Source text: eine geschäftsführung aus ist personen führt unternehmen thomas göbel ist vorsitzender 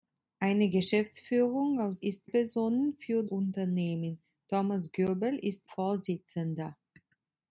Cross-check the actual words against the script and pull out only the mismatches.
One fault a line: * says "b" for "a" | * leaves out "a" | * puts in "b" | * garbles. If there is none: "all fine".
all fine